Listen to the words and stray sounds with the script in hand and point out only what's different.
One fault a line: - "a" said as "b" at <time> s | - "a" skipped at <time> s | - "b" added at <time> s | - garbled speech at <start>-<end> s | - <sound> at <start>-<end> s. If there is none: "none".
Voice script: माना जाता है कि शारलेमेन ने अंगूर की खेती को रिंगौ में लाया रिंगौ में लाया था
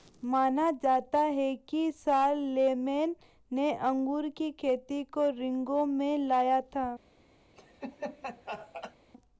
- "रिंगौ में लाया" skipped at 6.6 s
- laugh at 7.6-9.0 s